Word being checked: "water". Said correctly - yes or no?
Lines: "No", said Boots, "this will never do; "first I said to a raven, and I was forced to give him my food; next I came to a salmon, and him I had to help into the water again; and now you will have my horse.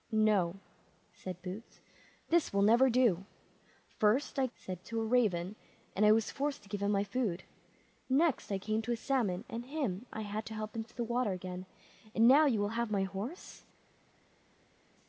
yes